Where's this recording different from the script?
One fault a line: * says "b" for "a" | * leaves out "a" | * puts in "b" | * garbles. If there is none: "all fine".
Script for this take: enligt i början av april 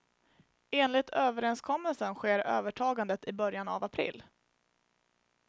* puts in "överenskommelsen sker övertagandet"